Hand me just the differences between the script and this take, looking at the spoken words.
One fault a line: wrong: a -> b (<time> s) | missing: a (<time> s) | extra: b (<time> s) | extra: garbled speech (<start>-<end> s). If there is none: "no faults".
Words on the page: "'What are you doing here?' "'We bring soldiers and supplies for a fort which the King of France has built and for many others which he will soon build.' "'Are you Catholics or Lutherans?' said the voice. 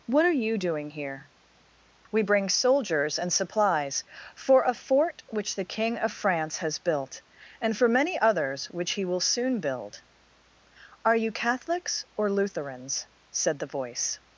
no faults